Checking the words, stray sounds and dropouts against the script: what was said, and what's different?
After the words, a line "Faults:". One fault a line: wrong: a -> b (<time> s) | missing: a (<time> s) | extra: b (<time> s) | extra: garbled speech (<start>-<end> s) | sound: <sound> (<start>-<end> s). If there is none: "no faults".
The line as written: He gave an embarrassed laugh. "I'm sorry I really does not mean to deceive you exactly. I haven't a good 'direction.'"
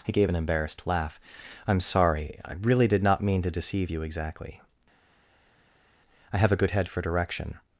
He gave an embarrassed laugh. "I'm sorry I really did not mean to deceive you exactly. I have a good head for 'direction.'"
Faults:
wrong: does -> did (2.9 s)
wrong: haven't -> have (6.4 s)
extra: head for (6.7 s)